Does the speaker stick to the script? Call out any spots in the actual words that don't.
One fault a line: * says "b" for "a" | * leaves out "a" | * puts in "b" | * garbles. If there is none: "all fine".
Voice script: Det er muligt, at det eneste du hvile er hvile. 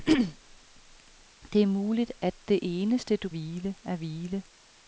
all fine